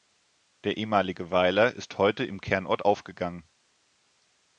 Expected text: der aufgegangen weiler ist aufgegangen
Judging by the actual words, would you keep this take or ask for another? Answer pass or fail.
fail